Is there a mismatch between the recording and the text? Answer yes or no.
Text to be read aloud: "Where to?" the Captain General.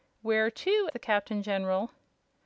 no